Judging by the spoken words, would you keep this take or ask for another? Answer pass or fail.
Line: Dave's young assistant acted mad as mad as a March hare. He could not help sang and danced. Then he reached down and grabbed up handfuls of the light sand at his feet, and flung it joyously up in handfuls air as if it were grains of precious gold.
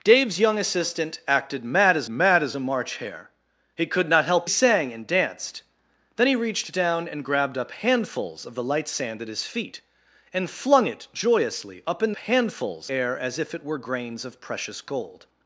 pass